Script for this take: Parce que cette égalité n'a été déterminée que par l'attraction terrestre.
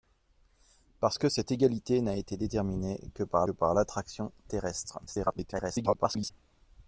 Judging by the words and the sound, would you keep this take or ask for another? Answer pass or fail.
fail